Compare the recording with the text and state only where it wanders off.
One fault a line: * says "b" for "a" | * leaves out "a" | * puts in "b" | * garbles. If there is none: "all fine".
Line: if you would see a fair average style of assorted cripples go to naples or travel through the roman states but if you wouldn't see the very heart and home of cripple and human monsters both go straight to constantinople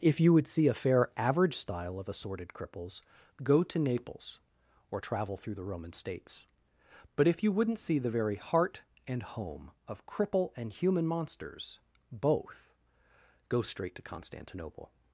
all fine